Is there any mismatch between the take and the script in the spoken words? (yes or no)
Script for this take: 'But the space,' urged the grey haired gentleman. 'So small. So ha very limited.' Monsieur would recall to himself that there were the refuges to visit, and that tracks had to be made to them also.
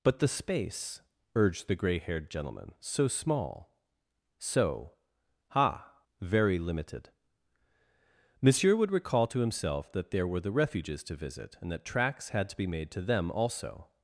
no